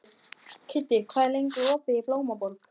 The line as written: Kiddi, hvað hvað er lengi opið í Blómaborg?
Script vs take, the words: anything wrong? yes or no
yes